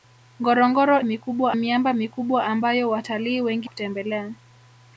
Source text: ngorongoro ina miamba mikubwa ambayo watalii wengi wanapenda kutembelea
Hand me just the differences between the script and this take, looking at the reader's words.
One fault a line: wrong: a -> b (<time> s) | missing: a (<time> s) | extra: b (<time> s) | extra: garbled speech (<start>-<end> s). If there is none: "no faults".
wrong: ina -> mikubwa (1.0 s)
missing: wanapenda (3.7 s)